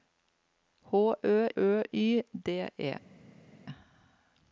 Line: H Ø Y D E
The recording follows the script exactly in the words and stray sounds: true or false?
false